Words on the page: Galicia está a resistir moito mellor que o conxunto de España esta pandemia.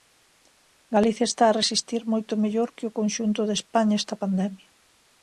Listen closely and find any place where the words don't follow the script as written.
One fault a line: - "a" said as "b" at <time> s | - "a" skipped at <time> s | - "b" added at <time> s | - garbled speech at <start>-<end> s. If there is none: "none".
none